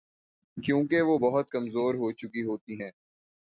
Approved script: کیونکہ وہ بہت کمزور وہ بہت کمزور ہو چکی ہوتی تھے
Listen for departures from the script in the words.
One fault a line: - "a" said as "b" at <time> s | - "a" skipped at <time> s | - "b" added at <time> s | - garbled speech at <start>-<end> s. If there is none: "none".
- "وہ بہت کمزور" skipped at 1.9 s
- "تھے" said as "ہیں" at 2.8 s